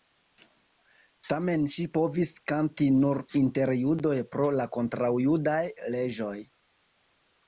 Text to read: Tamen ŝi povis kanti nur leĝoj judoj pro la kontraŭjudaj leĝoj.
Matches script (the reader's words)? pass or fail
fail